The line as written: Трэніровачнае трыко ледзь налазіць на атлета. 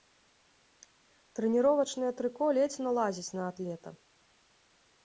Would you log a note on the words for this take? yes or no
no